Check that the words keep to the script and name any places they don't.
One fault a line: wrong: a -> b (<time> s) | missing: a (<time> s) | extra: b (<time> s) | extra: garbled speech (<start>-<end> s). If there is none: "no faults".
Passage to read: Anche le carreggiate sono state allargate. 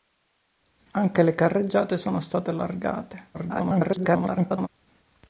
extra: garbled speech (3.3-4.7 s)